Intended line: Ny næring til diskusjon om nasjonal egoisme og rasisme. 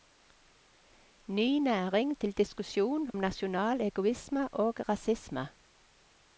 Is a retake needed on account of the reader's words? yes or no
yes